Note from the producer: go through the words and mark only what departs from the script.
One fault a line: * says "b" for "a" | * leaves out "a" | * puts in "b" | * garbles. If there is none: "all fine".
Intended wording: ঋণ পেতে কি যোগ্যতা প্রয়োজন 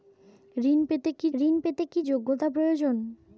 * puts in "ঋণ পেতে কি"